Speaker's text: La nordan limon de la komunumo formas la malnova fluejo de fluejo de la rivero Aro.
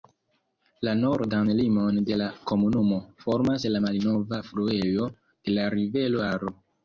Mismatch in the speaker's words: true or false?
true